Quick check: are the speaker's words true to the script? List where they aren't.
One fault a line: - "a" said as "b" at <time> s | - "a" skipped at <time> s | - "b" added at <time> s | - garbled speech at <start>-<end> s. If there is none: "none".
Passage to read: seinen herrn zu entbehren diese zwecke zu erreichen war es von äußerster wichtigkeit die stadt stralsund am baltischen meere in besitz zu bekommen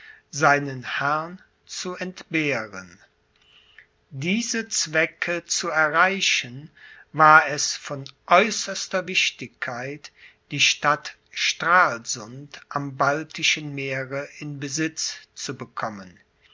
none